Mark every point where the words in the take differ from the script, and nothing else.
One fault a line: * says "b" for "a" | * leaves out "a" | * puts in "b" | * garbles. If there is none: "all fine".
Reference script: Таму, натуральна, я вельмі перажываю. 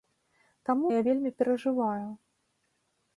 * leaves out "натуральна"